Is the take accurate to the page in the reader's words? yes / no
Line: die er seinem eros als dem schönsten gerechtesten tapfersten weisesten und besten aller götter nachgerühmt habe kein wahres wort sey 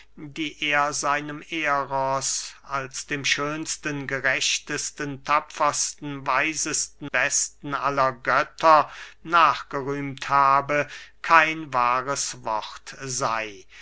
no